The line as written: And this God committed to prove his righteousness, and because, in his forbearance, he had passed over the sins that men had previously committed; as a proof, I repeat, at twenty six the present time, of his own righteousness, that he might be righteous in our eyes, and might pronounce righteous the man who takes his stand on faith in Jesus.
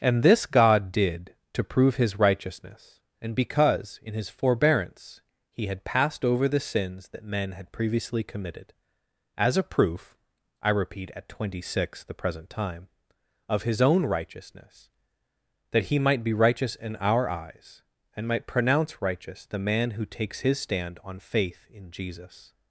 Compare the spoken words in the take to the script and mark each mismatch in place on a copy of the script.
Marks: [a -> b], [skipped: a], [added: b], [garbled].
And this God [committed -> did] to prove his righteousness, and because, in his forbearance, he had passed over the sins that men had previously committed; as a proof, I repeat, at twenty six the present time, of his own righteousness, that he might be righteous in our eyes, and might pronounce righteous the man who takes his stand on faith in Jesus.